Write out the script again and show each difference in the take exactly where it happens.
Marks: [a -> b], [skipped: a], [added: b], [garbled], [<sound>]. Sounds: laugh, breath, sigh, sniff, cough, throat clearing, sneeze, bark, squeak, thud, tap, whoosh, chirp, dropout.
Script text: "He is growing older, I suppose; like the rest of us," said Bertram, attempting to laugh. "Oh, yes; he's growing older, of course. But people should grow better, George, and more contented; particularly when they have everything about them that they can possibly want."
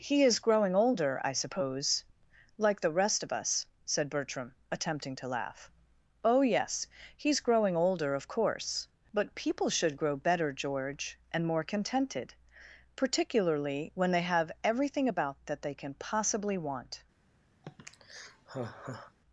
"He is growing older, I suppose; like the rest of us," said Bertram, attempting to laugh. "Oh, yes; he's growing older, of course. But people should grow better, George, and more contented; particularly when they have everything about [skipped: them] that they can possibly want." [sigh]